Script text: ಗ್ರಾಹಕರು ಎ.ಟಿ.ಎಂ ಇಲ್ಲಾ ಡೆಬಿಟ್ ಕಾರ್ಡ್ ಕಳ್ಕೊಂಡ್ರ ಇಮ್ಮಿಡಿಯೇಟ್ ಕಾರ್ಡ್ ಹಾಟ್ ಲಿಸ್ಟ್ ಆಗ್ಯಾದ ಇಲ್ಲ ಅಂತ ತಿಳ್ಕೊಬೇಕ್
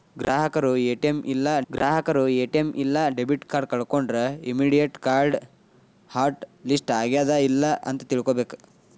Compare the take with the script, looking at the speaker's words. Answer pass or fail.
fail